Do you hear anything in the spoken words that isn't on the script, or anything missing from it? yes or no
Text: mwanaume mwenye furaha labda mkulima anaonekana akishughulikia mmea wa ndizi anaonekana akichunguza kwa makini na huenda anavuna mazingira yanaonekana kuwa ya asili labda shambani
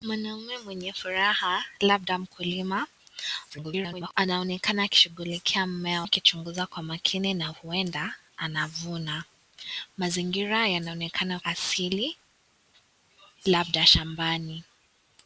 yes